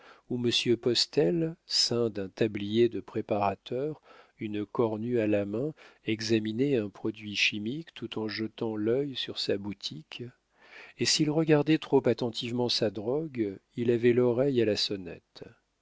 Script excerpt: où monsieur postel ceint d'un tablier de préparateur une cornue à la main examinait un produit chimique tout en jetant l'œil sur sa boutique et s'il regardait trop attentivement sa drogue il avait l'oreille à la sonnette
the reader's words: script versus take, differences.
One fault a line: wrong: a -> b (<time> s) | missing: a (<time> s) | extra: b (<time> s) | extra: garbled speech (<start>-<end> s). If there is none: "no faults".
no faults